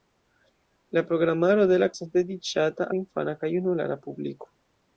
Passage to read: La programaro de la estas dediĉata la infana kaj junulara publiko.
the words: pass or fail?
pass